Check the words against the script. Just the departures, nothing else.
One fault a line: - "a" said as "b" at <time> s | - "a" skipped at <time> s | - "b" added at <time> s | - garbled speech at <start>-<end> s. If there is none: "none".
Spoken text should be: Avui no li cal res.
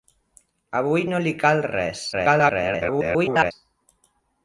- garbled speech at 2.1-3.5 s